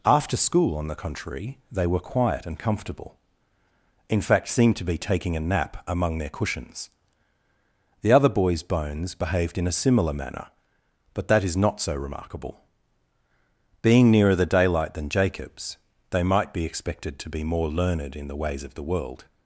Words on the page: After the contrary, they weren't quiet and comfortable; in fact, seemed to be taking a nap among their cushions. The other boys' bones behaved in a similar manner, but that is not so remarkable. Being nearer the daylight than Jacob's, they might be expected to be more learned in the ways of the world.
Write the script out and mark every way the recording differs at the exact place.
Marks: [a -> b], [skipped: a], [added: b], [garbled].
After [added: school on] the contrary, they [weren't -> were] quiet and comfortable; in fact, seemed to be taking a nap among their cushions. The other boys' bones behaved in a similar manner, but that is not so remarkable. Being nearer the daylight than Jacob's, they might be expected to be more learned in the ways of the world.